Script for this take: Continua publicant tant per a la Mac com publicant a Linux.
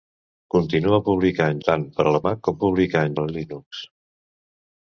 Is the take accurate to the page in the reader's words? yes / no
yes